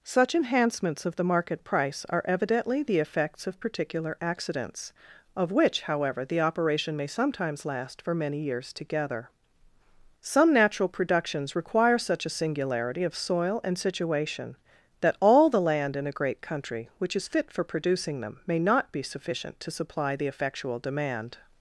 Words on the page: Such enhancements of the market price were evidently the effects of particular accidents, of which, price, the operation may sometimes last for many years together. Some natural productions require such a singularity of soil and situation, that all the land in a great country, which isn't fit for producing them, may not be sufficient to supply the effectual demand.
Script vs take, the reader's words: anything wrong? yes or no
yes